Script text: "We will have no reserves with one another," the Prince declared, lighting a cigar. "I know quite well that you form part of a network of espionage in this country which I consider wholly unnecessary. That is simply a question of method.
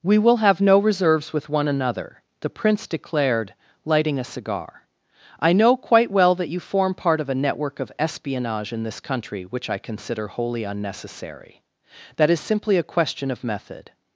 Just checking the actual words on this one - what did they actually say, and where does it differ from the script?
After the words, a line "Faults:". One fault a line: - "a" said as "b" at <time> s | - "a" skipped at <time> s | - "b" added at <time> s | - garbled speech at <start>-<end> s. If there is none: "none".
"We will have no reserves with one another," the Prince declared, lighting a cigar. "I know quite well that you form part of a network of espionage in this country which I consider wholly unnecessary. That is simply a question of method.
Faults:
none